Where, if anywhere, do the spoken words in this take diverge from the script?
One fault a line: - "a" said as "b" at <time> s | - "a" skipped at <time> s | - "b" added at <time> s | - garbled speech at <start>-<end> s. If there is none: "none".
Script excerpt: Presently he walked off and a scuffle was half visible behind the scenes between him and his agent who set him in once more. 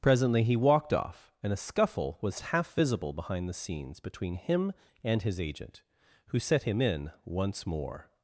none